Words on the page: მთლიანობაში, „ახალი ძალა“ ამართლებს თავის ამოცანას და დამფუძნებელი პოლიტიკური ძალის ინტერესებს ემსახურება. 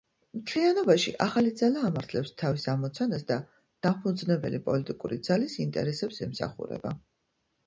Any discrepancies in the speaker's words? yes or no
no